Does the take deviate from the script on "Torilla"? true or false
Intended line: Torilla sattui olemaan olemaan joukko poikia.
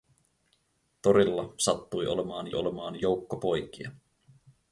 false